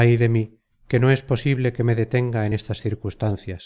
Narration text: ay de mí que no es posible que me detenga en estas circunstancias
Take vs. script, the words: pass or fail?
pass